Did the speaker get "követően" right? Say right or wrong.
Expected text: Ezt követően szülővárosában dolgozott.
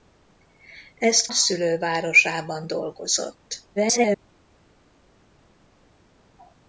wrong